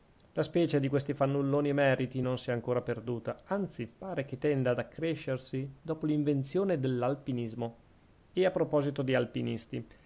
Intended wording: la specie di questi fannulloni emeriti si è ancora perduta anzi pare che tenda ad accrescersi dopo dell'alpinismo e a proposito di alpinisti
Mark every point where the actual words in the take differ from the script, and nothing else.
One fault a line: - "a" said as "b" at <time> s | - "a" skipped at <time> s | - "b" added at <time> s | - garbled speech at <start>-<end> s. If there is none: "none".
- "non" added at 2.2 s
- "l'invenzione" added at 6.1 s